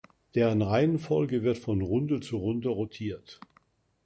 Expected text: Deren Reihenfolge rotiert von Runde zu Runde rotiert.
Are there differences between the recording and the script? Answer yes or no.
yes